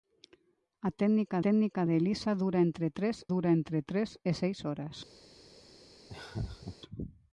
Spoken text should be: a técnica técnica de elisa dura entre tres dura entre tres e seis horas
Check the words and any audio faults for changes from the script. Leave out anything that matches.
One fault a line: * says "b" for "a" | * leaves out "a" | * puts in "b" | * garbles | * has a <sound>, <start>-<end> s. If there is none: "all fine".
* has a laugh, 6.1-6.8 s